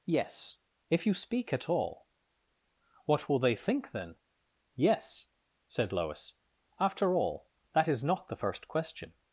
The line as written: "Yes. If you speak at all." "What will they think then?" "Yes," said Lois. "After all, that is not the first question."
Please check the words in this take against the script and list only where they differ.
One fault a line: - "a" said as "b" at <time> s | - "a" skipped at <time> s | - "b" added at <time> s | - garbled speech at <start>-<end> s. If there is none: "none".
none